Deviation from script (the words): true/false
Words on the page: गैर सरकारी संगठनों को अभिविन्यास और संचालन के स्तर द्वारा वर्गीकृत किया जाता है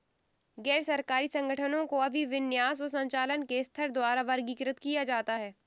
false